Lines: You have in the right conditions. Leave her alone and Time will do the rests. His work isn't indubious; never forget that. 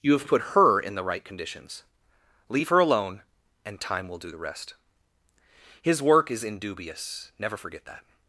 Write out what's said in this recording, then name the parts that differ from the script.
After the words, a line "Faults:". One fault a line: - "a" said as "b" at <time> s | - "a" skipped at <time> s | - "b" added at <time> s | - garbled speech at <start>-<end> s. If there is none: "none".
You have put her in the right conditions. Leave her alone and Time will do the rest. His work is indubious; never forget that.
Faults:
- "put her" added at 0.3 s
- "rests" said as "rest" at 4.4 s
- "isn't" said as "is" at 6.3 s